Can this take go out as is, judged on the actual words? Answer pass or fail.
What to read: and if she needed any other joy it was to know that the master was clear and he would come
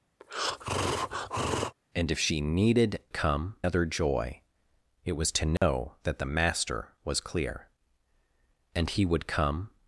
fail